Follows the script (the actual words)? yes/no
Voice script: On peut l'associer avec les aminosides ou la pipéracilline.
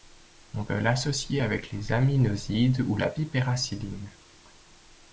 yes